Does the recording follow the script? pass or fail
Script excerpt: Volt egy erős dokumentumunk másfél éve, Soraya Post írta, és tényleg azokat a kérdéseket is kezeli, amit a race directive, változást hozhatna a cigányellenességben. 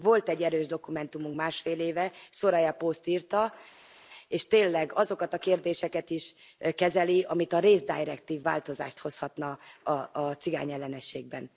pass